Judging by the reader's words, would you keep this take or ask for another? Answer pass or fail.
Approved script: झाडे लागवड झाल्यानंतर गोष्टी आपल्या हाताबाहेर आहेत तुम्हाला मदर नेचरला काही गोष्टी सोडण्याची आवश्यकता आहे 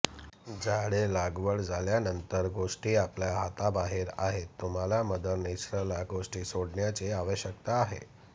fail